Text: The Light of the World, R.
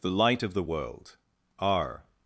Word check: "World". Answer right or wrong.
right